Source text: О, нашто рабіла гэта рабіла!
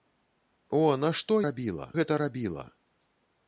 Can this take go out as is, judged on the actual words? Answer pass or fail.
pass